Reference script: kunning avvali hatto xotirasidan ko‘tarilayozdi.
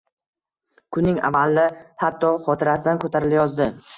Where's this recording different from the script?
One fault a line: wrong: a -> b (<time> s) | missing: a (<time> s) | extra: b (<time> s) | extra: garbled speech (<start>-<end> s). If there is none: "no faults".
no faults